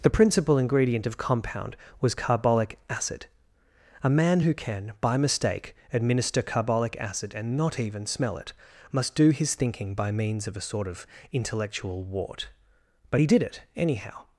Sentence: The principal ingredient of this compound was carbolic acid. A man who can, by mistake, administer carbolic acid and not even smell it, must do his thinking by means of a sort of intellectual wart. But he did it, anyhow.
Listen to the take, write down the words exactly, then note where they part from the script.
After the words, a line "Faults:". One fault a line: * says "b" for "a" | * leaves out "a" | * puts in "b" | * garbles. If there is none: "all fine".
The principal ingredient of compound was carbolic acid. A man who can, by mistake, administer carbolic acid and not even smell it, must do his thinking by means of a sort of intellectual wart. But he did it, anyhow.
Faults:
* leaves out "this"